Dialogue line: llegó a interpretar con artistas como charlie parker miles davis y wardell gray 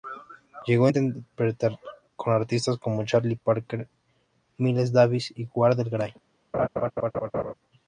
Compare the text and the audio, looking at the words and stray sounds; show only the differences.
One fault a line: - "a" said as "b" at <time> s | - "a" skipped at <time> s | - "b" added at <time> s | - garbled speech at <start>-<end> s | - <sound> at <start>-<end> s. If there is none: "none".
- laugh at 6.5-7.5 s